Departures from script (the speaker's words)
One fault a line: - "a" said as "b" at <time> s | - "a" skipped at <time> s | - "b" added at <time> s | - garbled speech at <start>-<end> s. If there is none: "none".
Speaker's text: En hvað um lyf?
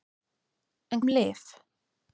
- "hvað" skipped at 1.1 s